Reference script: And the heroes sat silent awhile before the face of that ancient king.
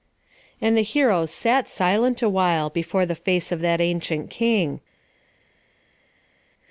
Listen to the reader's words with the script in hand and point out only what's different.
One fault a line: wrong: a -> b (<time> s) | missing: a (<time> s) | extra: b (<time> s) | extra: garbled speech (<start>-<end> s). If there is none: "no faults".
no faults